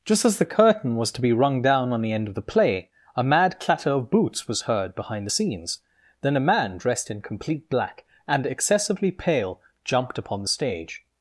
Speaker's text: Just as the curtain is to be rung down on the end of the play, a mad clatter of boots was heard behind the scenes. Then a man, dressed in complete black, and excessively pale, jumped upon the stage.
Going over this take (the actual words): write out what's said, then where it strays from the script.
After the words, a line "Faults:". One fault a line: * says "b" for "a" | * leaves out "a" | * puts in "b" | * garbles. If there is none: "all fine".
Just as the curtain was to be rung down on the end of the play, a mad clatter of boots was heard behind the scenes. Then a man, dressed in complete black, and excessively pale, jumped upon the stage.
Faults:
* says "was" for "is"